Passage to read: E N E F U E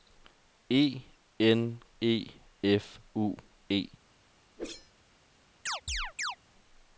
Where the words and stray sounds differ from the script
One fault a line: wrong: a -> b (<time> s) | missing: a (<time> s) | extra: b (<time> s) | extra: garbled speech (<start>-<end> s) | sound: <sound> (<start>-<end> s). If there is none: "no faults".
sound: whoosh (4.6-4.9 s)
sound: chirp (5.7-6.4 s)